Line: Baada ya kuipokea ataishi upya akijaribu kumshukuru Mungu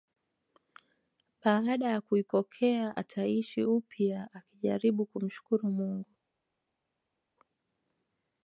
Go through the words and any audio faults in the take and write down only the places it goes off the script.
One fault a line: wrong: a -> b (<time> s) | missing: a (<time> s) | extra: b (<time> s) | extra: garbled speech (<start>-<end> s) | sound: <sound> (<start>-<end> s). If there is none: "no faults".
no faults